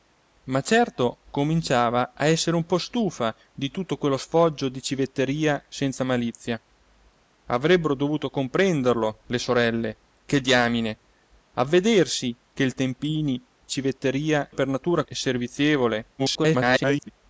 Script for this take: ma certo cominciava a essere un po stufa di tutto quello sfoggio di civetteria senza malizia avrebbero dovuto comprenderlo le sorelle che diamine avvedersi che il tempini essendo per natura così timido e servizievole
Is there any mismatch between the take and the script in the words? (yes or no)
yes